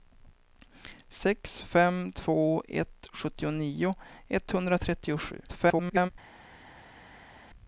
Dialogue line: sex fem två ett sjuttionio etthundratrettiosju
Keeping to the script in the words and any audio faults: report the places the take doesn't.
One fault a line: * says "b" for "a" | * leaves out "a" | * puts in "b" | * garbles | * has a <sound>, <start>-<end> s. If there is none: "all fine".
* garbles